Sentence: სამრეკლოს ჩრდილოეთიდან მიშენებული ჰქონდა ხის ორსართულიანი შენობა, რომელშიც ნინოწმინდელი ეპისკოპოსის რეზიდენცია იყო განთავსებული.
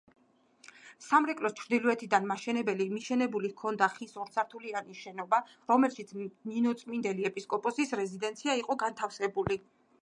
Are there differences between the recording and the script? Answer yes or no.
no